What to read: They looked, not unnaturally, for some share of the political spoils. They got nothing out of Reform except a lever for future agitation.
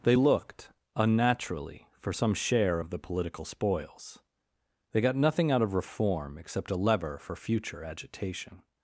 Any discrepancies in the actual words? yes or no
yes